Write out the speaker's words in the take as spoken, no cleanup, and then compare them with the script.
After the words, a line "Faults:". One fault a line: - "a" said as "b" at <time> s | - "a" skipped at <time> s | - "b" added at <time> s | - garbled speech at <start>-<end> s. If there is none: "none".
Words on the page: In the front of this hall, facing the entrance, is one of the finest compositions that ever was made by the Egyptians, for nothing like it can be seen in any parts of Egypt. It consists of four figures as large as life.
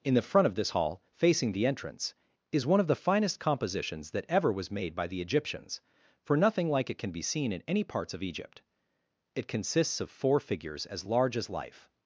In the front of this hall, facing the entrance, is one of the finest compositions that ever was made by the Egyptians, for nothing like it can be seen in any parts of Egypt. It consists of four figures as large as life.
Faults:
none